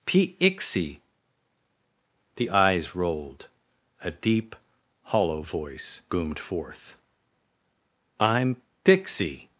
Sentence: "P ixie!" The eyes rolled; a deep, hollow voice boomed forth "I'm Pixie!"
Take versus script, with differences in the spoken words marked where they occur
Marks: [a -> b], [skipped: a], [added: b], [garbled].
"P ixie!" The eyes rolled; a deep, hollow voice boomed forth "I'm Pixie!"